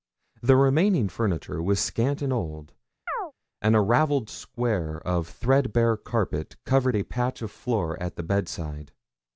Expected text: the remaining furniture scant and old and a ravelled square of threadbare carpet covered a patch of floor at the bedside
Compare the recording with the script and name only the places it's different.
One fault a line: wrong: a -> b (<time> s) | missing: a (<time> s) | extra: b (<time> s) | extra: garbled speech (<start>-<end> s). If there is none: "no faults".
extra: was (1.6 s)